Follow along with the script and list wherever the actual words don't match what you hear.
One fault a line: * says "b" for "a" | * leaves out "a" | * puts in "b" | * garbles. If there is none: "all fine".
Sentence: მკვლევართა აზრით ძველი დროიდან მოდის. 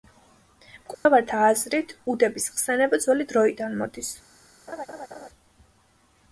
* puts in "უდების ხსენება"